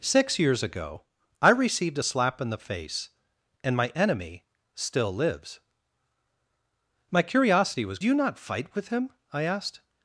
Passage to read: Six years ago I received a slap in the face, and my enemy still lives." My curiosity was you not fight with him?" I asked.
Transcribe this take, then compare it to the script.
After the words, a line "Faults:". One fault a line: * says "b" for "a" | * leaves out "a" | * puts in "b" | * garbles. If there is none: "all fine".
Six years ago I received a slap in the face, and my enemy still lives." My curiosity was you not fight with him?" I asked.
Faults:
all fine